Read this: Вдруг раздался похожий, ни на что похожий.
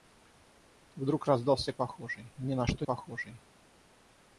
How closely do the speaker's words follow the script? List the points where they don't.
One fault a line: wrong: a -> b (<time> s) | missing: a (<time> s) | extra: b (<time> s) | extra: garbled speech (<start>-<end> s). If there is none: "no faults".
no faults